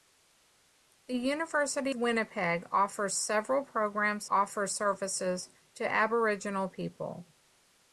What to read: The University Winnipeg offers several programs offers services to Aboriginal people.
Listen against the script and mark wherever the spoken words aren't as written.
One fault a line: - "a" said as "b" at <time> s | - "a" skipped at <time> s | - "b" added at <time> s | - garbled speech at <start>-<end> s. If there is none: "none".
none